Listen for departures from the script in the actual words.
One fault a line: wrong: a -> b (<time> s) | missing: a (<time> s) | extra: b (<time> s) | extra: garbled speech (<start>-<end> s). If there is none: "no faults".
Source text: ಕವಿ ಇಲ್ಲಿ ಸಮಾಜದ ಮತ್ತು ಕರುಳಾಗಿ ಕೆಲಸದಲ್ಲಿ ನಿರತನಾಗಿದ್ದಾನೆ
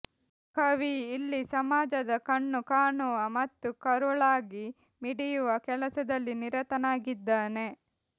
extra: ಕಣ್ಣು ಕಾಣುವ (2.2 s)
extra: ಮಿಡಿಯುವ (5.0 s)